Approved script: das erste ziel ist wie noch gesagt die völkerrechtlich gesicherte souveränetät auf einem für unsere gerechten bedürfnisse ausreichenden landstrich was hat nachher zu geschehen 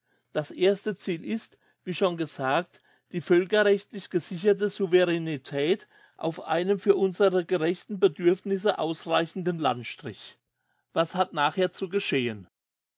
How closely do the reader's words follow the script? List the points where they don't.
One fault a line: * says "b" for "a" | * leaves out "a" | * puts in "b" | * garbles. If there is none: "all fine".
* says "schon" for "noch"